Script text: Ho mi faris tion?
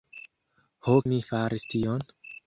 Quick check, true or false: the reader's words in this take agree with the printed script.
true